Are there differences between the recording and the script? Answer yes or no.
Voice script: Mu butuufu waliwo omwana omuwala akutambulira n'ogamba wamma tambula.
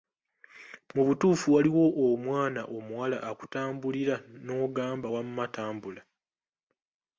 no